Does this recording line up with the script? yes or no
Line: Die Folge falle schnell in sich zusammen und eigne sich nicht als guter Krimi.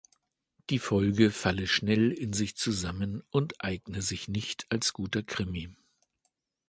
yes